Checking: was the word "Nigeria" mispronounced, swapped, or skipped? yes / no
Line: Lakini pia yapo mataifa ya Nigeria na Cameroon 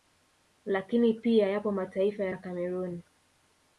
yes